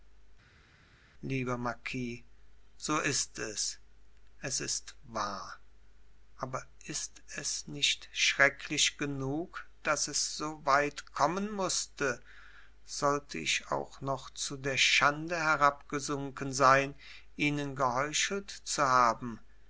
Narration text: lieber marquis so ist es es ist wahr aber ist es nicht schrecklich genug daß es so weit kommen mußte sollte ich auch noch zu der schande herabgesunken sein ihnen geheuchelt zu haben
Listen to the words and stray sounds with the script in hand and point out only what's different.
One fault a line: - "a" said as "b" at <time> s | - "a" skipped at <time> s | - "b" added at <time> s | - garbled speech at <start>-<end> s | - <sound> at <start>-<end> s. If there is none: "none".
none